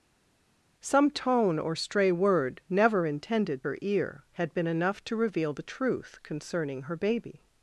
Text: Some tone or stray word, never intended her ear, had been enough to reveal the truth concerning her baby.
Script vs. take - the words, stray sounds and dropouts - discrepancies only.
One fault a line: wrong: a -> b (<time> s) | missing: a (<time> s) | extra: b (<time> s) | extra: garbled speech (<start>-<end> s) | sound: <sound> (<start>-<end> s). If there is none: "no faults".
no faults